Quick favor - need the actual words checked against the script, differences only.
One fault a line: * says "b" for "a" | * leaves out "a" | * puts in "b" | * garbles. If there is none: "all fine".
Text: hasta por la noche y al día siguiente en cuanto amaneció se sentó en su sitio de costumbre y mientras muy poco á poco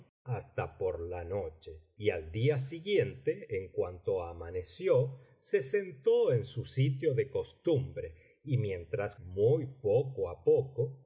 all fine